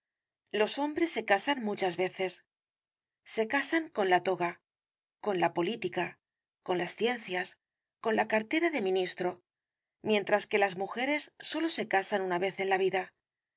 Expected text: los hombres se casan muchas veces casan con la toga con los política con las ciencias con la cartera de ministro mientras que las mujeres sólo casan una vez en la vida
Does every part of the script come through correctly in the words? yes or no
no